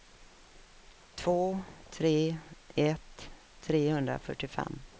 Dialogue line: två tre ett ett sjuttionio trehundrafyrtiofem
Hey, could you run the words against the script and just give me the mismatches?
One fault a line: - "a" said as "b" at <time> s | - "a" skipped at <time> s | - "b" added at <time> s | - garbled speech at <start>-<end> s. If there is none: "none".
- "ett sjuttionio" skipped at 3.3 s